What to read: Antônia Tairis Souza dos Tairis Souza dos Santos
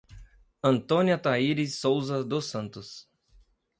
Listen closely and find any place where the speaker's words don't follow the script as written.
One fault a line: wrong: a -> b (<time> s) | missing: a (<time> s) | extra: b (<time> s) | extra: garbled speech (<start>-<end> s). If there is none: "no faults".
missing: Tairis Souza dos (2.5 s)